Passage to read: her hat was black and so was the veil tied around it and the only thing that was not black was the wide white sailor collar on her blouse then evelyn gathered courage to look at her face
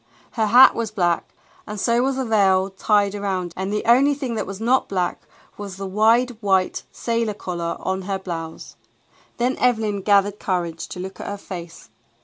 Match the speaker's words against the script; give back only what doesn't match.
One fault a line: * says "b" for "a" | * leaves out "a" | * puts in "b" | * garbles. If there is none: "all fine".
* leaves out "it"